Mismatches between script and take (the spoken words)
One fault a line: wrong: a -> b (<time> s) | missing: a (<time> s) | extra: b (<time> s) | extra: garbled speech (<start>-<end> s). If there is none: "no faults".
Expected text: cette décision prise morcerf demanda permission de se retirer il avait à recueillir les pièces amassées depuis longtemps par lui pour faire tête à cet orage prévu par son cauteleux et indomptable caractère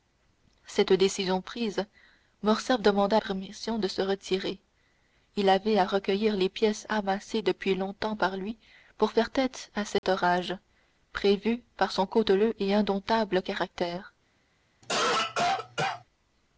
no faults